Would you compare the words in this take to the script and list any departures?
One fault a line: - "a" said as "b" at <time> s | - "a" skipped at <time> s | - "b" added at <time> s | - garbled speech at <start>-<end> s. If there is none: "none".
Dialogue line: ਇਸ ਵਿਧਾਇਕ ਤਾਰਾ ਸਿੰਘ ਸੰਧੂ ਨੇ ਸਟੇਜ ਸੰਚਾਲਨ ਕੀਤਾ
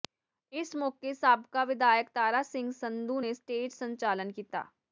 - "ਮੌਕੇ ਸਾਬਕਾ" added at 0.8 s